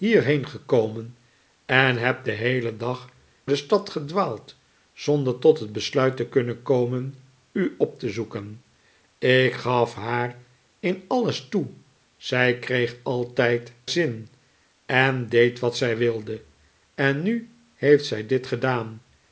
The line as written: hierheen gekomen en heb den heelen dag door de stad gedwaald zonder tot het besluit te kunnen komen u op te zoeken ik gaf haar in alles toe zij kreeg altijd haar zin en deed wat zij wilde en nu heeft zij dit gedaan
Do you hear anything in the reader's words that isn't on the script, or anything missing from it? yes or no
yes